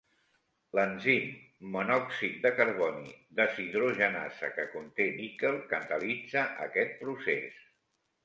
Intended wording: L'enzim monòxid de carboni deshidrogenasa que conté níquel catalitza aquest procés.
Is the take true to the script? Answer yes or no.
yes